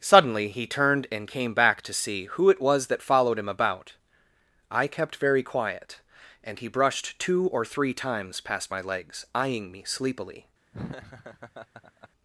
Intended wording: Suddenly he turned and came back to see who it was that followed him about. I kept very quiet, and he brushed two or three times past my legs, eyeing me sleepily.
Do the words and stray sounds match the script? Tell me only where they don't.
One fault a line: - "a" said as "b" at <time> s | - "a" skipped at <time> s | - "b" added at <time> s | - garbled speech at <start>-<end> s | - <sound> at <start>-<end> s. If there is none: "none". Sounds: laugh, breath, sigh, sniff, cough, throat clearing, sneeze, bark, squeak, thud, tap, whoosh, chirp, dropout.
- laugh at 10.7-12.1 s